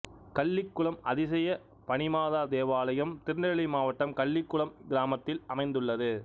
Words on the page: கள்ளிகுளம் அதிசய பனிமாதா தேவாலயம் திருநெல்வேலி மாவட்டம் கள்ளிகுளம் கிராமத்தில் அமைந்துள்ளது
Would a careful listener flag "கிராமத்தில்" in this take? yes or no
no